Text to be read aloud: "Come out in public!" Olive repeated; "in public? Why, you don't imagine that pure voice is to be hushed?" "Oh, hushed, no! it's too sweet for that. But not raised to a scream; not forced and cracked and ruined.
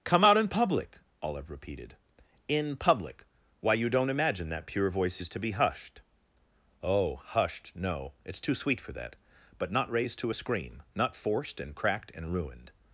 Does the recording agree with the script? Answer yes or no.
yes